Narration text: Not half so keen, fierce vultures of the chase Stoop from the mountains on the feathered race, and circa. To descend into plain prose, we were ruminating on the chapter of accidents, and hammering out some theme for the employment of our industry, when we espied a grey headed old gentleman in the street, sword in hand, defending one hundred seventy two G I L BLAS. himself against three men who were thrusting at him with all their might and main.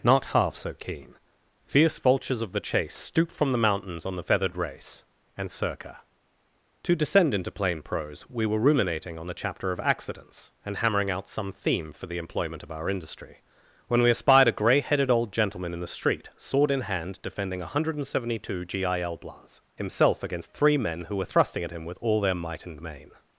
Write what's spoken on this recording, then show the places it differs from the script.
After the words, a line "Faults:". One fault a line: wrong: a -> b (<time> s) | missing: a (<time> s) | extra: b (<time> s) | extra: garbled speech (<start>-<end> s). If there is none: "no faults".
Not half so keen, fierce vultures of the chase Stoop from the mountains on the feathered race, and circa. To descend into plain prose, we were ruminating on the chapter of accidents, and hammering out some theme for the employment of our industry, when we espied a grey headed old gentleman in the street, sword in hand, defending one hundred seventy two G I L BLAS. himself against three men who were thrusting at him with all their might and main.
Faults:
no faults